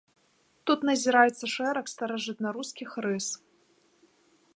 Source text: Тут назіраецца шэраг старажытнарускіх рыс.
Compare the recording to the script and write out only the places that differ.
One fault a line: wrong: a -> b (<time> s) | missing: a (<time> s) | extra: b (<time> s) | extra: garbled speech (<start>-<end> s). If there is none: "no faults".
no faults